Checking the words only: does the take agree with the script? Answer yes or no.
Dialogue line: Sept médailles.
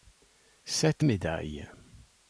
yes